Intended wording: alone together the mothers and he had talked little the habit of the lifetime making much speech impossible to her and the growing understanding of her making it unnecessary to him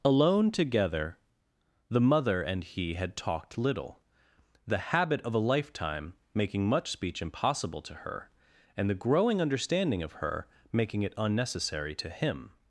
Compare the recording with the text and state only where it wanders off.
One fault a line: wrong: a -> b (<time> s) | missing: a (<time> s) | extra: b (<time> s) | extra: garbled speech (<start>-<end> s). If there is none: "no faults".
wrong: mothers -> mother (2.0 s)
wrong: the -> a (5.3 s)